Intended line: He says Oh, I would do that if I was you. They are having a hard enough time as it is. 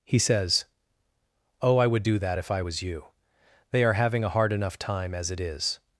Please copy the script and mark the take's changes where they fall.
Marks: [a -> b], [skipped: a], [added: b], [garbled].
He says Oh, I would do that if I was you. They are having a hard enough time as it is.